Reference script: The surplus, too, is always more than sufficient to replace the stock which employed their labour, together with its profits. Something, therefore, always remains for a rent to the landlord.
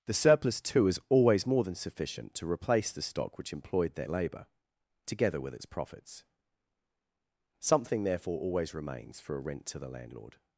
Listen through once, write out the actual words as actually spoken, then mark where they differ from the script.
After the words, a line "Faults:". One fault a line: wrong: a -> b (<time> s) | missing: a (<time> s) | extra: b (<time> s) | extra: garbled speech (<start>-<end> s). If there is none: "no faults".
The surplus, too, is always more than sufficient to replace the stock which employed their labour, together with its profits. Something, therefore, always remains for a rent to the landlord.
Faults:
no faults